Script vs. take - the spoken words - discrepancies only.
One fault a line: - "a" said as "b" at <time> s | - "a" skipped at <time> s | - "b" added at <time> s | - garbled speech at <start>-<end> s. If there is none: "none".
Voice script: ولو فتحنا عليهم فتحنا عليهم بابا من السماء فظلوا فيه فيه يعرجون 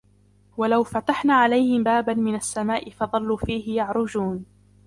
- "فتحنا عليهم" skipped at 1.9 s
- "فيه" skipped at 3.8 s